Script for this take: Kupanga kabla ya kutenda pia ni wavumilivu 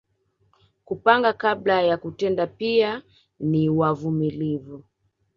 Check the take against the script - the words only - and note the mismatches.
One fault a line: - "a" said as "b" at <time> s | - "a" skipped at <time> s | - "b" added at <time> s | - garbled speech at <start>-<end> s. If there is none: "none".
none